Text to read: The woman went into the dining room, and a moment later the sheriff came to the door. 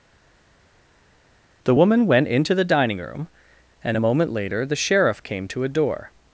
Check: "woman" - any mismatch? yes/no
no